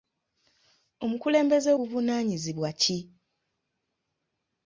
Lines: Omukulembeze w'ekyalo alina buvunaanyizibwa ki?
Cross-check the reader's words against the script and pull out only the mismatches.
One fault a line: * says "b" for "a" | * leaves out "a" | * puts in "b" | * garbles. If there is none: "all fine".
* leaves out "w'ekyalo alina"